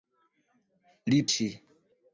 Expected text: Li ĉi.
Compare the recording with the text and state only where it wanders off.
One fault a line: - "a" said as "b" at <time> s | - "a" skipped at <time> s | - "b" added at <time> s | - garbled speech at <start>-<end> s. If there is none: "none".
none